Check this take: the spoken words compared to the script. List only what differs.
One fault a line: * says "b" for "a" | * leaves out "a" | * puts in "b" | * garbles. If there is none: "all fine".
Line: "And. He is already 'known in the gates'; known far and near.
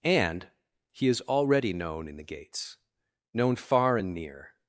all fine